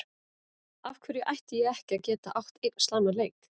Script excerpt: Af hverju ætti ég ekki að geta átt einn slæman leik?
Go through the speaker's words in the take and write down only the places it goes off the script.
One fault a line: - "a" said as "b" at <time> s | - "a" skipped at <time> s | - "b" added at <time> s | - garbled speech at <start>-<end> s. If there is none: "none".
none